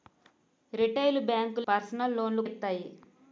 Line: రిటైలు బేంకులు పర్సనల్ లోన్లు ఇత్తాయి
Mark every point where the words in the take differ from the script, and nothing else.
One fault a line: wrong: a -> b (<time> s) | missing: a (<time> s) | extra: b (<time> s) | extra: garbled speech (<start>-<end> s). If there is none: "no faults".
no faults